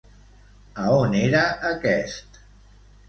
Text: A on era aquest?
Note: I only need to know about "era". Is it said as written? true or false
true